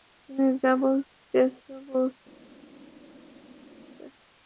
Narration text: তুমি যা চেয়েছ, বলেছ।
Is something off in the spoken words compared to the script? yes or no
yes